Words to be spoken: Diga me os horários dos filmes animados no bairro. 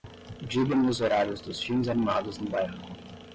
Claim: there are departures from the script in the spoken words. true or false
false